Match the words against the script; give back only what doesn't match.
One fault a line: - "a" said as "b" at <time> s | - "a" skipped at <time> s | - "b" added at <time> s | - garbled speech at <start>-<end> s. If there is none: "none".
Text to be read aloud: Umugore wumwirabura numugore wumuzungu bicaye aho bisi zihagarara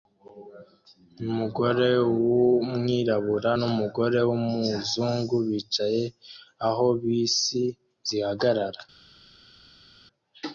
none